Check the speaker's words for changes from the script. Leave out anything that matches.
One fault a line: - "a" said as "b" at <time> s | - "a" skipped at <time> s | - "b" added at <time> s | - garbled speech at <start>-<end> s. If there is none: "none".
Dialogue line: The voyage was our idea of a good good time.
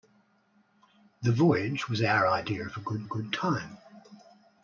none